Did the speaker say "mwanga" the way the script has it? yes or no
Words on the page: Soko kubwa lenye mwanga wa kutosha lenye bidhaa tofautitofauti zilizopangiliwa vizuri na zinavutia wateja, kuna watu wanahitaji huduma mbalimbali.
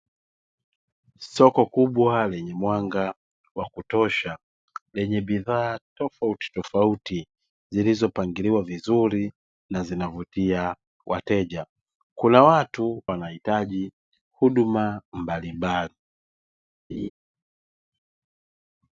yes